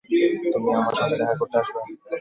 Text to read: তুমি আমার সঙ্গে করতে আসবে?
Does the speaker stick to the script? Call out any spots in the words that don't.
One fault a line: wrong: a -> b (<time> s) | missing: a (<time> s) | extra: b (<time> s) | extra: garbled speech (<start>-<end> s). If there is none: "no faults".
extra: দেখা (1.2 s)